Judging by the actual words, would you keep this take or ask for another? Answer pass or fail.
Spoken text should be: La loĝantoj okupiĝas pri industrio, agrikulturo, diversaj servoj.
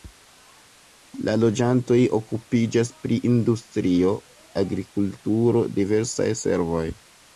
pass